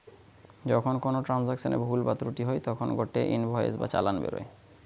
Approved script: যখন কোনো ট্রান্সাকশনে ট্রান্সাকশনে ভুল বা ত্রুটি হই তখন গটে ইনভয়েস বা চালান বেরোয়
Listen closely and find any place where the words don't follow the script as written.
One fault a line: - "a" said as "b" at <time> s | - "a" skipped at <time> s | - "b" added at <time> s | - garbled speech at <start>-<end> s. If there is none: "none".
- "ট্রান্সাকশনে" skipped at 1.8 s